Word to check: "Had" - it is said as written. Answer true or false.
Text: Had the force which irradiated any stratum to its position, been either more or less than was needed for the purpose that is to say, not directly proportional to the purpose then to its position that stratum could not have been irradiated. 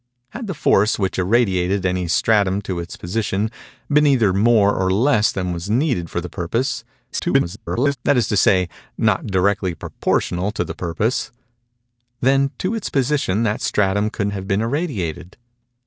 true